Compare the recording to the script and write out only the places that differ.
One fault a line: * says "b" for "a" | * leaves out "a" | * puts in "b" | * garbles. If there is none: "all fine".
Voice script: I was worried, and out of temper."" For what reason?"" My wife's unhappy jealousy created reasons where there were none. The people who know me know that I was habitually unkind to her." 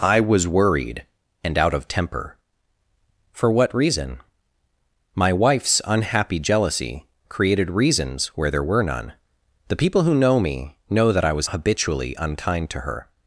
all fine